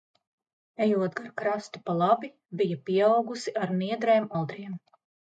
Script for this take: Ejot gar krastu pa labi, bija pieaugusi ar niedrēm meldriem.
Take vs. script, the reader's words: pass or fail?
pass